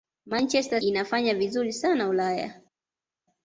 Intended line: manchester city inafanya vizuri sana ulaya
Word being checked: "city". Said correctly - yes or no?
no